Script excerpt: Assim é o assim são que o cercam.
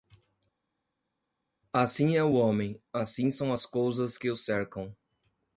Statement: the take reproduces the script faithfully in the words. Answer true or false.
false